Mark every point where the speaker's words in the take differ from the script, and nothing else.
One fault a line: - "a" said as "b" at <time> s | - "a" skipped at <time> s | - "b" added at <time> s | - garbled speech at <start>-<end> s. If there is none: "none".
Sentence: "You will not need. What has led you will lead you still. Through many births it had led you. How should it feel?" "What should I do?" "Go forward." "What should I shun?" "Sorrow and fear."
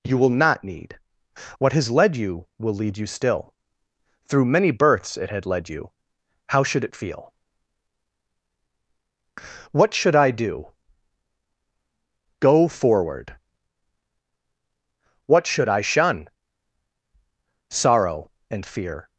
none